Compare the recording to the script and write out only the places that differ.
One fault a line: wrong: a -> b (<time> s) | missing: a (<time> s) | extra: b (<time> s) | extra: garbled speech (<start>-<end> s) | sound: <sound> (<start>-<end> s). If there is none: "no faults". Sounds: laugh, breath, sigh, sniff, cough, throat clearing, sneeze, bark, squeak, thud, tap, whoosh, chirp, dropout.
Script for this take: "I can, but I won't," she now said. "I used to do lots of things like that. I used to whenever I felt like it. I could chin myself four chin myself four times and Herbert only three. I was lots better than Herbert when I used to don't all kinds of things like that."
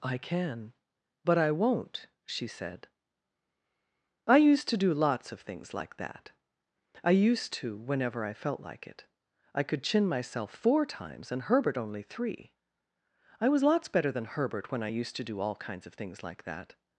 missing: now (2.5 s)
missing: chin myself four (10.9 s)
wrong: don't -> do (15.2 s)